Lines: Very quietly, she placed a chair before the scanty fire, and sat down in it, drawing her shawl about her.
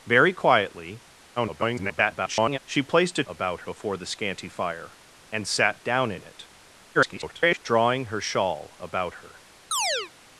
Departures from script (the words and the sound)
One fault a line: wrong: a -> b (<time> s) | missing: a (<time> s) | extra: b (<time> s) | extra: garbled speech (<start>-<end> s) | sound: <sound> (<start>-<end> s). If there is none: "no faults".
extra: garbled speech (1.4-2.6 s)
wrong: chair -> about (3.3 s)
extra: garbled speech (6.9-7.6 s)
sound: chirp (9.7-10.1 s)